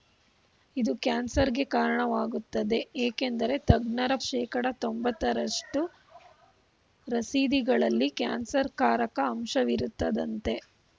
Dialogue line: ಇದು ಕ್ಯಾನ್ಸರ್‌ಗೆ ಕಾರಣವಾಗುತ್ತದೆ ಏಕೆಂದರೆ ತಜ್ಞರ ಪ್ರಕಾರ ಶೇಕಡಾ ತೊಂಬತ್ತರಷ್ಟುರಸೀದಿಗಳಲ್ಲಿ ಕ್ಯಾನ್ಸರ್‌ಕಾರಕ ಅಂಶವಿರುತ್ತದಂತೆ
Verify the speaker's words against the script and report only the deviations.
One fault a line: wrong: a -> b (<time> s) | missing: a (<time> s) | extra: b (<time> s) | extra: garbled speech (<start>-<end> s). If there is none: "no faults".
missing: ಪ್ರಕಾರ (4.1 s)